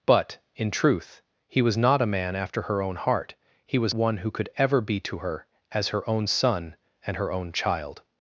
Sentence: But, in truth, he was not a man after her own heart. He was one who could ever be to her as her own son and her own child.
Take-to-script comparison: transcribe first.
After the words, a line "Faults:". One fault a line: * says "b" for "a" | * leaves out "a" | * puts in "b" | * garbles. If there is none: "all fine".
But, in truth, he was not a man after her own heart. He was one who could ever be to her as her own son and her own child.
Faults:
all fine